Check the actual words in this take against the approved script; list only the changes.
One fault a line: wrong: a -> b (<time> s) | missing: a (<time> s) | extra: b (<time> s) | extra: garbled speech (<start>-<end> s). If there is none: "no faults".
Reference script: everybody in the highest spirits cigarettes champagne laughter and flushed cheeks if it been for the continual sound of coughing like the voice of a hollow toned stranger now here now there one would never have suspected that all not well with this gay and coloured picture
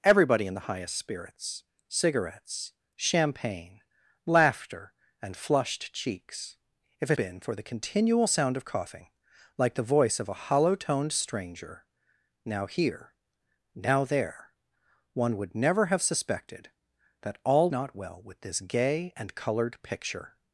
no faults